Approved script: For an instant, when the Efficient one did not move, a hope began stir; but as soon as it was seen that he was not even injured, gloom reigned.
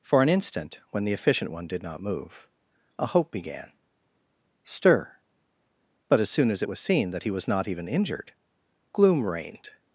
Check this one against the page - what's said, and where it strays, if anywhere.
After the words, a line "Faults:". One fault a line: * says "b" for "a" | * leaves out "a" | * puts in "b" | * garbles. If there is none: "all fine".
For an instant, when the Efficient one did not move, a hope began stir; but as soon as it was seen that he was not even injured, gloom reigned.
Faults:
all fine